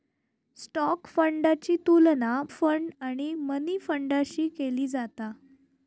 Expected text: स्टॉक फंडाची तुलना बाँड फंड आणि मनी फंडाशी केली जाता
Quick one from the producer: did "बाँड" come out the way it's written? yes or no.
no